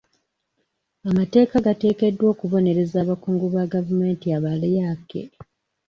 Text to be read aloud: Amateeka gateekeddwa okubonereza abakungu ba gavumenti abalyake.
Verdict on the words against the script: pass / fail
pass